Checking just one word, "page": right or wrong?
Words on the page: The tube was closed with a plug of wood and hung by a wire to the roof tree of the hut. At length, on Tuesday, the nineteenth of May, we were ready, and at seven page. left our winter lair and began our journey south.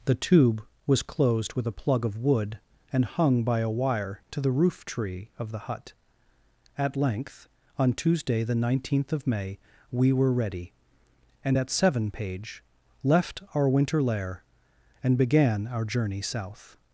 right